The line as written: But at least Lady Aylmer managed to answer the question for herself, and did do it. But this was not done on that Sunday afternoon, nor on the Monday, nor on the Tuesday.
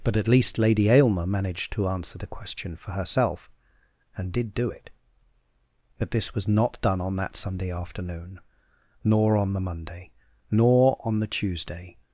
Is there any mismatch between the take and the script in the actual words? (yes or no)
no